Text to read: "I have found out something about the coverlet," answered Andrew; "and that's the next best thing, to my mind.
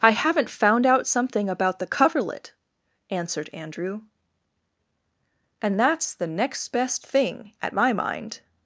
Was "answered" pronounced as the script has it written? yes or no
yes